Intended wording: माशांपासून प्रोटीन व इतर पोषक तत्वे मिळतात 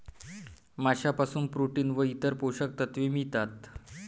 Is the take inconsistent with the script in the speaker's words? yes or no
no